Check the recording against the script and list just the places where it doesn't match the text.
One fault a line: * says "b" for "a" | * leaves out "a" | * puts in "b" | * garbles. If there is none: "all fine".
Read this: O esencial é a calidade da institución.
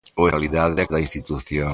* says "calidade" for "esencial"
* leaves out "calidade"